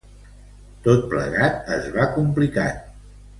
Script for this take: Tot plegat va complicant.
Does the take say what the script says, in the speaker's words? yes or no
no